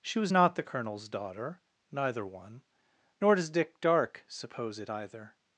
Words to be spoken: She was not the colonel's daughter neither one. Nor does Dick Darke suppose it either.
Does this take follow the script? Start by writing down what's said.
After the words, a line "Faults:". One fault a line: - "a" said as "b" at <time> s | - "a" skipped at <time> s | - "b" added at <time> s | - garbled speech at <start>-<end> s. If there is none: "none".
She was not the colonel's daughter neither one. Nor does Dick Darke suppose it either.
Faults:
none